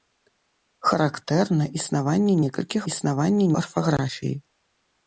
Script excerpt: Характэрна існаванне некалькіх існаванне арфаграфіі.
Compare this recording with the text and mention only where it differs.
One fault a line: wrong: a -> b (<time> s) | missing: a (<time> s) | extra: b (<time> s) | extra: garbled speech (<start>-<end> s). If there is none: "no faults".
no faults